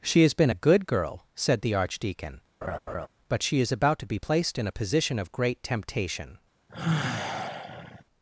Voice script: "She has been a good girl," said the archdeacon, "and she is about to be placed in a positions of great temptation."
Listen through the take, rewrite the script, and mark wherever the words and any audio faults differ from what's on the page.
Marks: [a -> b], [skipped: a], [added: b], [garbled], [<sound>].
"She has been a good girl," said the archdeacon, [laugh] ["and -> but] she is about to be placed in a [positions -> position] of great temptation." [sigh]